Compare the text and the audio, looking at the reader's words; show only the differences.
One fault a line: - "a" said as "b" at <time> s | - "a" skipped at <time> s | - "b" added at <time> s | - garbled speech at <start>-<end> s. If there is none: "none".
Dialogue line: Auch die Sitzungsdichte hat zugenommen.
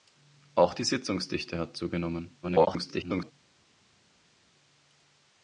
- garbled speech at 2.4-3.3 s